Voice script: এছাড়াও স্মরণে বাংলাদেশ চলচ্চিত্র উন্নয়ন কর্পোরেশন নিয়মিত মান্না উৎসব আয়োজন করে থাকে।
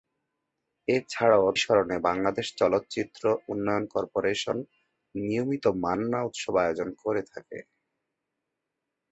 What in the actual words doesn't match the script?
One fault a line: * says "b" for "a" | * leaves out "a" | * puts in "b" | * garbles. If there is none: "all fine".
all fine